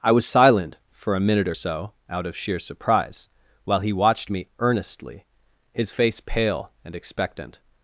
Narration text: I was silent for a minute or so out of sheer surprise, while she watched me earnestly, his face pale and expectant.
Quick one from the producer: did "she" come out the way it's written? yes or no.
no